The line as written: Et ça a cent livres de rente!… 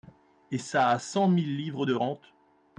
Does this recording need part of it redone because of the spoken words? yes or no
yes